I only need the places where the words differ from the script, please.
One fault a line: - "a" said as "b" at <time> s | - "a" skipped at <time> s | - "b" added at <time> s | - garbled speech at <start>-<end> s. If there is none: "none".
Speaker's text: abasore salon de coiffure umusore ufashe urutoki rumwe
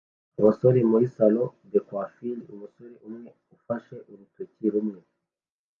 - "muri" added at 0.9 s
- "umwe" added at 3.1 s